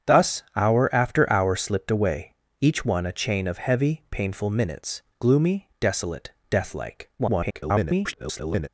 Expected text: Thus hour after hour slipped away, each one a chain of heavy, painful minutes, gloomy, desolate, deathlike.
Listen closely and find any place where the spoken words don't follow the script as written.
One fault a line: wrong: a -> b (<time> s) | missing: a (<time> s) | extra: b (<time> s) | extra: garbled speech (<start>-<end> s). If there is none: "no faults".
extra: garbled speech (7.2-8.7 s)